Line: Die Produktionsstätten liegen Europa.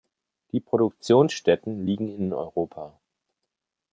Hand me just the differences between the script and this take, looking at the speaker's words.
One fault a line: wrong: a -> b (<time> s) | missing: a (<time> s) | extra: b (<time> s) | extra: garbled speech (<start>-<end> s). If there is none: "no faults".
extra: in (2.1 s)